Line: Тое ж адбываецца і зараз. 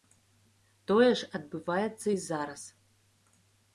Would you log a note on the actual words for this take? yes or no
no